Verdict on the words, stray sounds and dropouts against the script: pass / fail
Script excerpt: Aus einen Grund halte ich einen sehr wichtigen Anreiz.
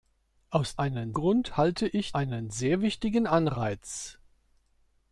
pass